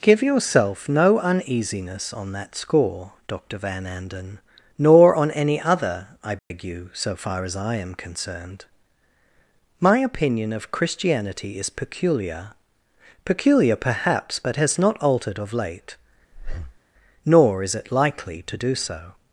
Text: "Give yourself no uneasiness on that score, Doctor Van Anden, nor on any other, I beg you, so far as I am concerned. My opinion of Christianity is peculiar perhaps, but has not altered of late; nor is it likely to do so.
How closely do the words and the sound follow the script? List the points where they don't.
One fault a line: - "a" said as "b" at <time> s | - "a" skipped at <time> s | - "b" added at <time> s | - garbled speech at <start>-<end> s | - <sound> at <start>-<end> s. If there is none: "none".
- dropout at 6.4-6.5 s
- "peculiar" added at 13.2 s
- breath at 16.3-16.8 s